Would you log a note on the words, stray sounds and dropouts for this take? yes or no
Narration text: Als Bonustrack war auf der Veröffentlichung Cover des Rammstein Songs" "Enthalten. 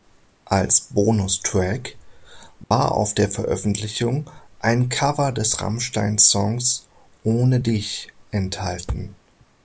yes